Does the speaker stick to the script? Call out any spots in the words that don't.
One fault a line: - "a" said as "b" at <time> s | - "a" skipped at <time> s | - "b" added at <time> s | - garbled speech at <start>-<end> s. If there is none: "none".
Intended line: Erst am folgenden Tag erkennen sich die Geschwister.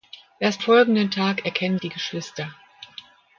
- "am" skipped at 0.6 s
- "sich" skipped at 1.8 s